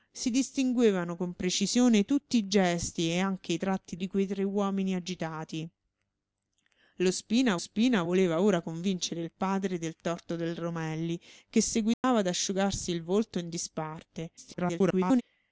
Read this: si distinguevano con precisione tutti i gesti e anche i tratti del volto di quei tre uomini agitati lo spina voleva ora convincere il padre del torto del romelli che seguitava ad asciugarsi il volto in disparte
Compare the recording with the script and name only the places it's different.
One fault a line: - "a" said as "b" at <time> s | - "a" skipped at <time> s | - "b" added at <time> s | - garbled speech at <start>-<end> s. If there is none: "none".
- "del volto" skipped at 4.0 s
- "spina" added at 7.6 s
- garbled speech at 14.4-15.2 s